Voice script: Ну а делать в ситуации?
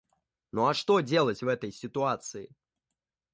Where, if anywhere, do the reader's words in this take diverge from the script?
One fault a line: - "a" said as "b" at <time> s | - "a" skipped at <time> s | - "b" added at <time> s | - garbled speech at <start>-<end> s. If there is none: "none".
- "что" added at 0.7 s
- "этой" added at 1.5 s